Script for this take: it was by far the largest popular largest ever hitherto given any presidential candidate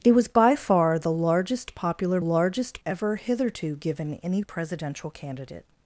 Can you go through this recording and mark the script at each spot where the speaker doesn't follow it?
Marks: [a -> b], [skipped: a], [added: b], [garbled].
it was by far the largest popular largest ever hitherto given any presidential candidate